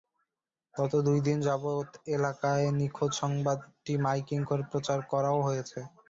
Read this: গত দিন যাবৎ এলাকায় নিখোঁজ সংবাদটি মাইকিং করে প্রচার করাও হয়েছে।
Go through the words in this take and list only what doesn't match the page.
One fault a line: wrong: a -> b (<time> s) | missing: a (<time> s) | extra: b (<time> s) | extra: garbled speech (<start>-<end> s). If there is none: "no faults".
extra: দুই (1.1 s)